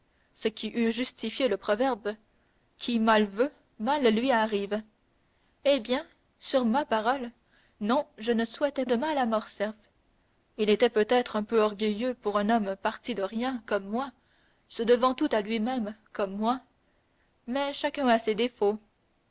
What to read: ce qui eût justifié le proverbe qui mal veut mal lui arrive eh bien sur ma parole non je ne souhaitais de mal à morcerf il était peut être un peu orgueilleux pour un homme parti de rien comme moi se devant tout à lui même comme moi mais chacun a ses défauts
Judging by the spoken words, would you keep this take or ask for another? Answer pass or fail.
pass